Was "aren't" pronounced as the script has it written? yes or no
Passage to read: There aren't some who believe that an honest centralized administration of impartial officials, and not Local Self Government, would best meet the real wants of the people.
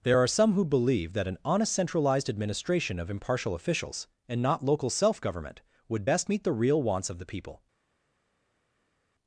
no